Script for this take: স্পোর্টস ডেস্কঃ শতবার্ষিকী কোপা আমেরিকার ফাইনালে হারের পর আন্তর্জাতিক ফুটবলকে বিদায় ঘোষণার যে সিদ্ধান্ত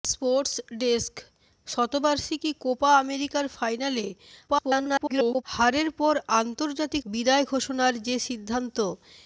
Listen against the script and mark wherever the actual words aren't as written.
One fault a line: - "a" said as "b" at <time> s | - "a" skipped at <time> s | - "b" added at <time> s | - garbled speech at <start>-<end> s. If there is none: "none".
- garbled speech at 4.5-5.4 s
- "ফুটবলকে" skipped at 7.0 s